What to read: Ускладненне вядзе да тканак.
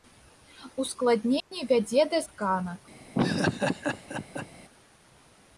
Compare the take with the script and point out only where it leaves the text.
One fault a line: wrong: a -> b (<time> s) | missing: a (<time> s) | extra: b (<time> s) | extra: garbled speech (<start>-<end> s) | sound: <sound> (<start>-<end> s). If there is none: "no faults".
sound: dropout (1.4-1.5 s)
sound: laugh (3.1-4.5 s)